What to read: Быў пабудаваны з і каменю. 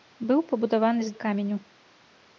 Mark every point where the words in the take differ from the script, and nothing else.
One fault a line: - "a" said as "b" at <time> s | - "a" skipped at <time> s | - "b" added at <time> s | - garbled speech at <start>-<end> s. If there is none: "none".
none